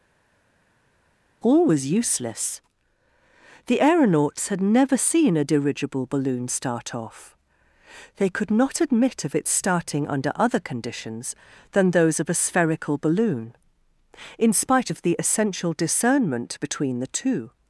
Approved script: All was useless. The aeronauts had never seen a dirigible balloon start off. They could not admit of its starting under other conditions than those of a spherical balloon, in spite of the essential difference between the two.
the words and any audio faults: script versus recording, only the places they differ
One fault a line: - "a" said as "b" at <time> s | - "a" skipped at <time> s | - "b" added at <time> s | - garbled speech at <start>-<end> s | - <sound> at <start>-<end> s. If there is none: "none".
- "difference" said as "discernment" at 15.7 s